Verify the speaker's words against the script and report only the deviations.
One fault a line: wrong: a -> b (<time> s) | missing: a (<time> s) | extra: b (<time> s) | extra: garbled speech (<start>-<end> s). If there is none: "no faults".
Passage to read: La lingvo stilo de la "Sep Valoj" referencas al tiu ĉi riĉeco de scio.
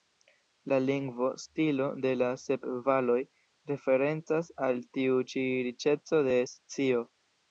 no faults